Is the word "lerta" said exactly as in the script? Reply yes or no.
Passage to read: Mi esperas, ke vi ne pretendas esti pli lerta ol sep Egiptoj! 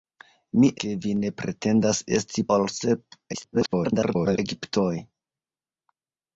no